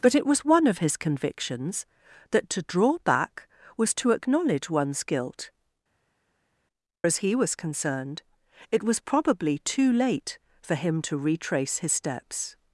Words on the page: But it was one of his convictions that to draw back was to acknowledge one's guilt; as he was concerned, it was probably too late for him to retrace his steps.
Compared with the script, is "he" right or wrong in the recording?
right